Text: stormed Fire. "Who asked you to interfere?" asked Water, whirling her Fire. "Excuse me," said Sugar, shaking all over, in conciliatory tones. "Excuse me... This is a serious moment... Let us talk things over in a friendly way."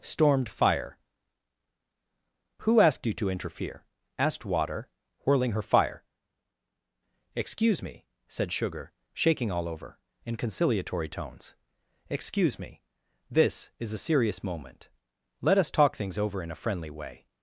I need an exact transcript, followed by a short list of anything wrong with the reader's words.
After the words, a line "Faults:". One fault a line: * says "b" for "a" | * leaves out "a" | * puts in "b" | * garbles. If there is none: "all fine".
stormed Fire. "Who asked you to interfere?" asked Water, whirling her Fire. "Excuse me," said Sugar, shaking all over, in conciliatory tones. "Excuse me... This is a serious moment... Let us talk things over in a friendly way."
Faults:
all fine